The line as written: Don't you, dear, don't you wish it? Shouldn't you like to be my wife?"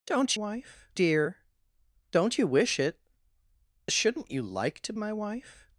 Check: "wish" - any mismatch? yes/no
no